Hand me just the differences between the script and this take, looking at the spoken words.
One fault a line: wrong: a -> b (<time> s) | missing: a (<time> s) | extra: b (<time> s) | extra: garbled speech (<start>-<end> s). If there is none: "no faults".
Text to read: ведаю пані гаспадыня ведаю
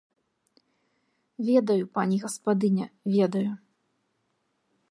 no faults